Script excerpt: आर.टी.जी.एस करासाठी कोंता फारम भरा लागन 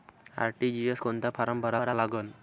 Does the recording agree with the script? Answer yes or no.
no